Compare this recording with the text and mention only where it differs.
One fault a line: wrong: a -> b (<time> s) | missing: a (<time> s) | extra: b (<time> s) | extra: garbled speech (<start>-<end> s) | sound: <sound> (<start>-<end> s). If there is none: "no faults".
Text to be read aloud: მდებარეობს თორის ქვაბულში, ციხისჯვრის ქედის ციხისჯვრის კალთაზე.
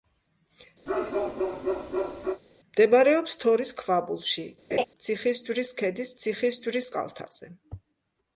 sound: bark (0.9-2.4 s)
sound: laugh (4.7-4.8 s)